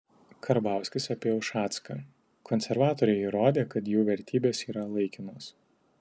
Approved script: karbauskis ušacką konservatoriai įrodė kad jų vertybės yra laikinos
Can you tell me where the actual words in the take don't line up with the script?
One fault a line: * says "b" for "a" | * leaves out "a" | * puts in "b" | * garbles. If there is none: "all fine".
* puts in "apie"